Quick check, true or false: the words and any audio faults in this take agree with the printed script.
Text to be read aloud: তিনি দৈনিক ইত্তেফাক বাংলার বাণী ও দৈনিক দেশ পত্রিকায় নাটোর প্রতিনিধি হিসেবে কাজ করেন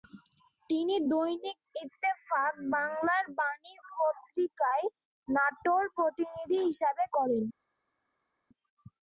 false